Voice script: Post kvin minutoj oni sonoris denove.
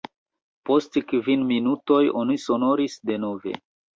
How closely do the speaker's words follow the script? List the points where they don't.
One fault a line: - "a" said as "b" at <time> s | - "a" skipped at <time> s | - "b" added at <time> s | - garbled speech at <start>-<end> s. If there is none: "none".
none